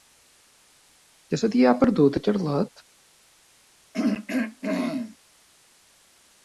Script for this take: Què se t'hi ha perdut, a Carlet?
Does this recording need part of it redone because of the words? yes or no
no